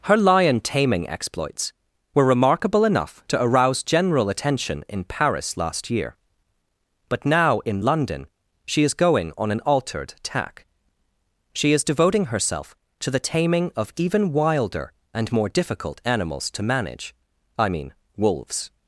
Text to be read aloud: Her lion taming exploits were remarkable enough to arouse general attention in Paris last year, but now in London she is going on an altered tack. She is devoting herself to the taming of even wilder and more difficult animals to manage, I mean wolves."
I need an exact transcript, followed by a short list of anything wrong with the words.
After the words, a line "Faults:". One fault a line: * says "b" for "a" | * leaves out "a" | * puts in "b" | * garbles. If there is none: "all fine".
Her lion taming exploits were remarkable enough to arouse general attention in Paris last year, but now in London she is going on an altered tack. She is devoting herself to the taming of even wilder and more difficult animals to manage, I mean wolves."
Faults:
all fine